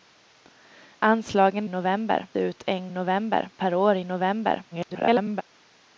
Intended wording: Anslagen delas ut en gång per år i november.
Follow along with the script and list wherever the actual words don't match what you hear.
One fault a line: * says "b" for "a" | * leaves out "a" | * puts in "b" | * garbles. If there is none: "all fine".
* says "november" for "delas"
* says "november" for "gång"
* garbles